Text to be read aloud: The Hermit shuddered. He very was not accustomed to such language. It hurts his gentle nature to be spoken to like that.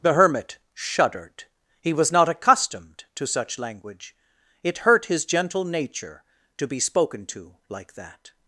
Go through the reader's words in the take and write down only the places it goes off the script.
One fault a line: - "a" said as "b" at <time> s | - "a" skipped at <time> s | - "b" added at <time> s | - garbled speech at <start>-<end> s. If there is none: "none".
- "very" skipped at 1.9 s
- "hurts" said as "hurt" at 4.8 s